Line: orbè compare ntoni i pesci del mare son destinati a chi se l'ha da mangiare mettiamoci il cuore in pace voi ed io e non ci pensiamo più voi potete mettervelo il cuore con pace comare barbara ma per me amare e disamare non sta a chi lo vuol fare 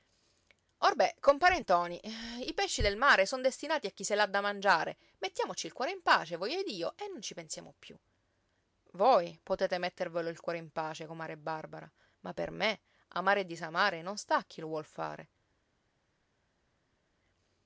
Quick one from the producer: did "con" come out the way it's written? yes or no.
no